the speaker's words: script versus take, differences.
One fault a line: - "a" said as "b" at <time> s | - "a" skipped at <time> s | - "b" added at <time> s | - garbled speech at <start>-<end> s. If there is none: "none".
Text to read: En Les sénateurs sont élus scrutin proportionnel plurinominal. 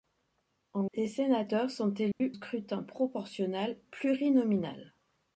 none